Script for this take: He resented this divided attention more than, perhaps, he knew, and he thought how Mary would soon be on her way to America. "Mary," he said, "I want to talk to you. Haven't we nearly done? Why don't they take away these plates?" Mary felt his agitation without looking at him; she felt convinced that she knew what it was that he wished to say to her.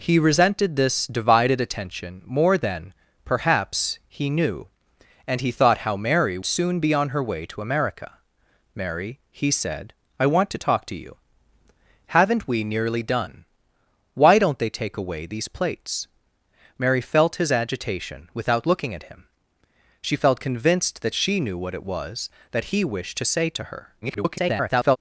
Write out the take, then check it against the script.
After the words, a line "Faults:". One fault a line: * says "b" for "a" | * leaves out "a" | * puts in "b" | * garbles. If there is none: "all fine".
He resented this divided attention more than, perhaps, he knew, and he thought how Mary soon be on her way to America. "Mary," he said, "I want to talk to you. Haven't we nearly done? Why don't they take away these plates?" Mary felt his agitation without looking at him; she felt convinced that she knew what it was that he wished to say to her. [garbled]
Faults:
* leaves out "would"
* garbles